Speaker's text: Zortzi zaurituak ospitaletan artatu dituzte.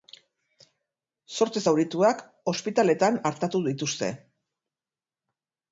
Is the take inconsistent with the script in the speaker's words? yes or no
no